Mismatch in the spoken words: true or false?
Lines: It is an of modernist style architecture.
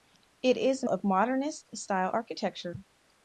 false